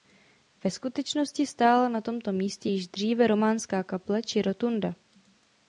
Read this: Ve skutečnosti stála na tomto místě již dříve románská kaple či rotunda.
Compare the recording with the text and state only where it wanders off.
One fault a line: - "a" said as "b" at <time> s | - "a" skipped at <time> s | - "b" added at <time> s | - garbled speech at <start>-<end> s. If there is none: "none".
none